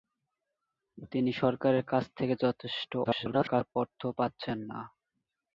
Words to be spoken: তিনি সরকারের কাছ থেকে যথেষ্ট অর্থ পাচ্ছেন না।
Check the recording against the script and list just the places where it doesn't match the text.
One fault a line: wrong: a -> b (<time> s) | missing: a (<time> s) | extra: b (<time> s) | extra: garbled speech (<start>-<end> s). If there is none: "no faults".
extra: garbled speech (3.0-3.8 s)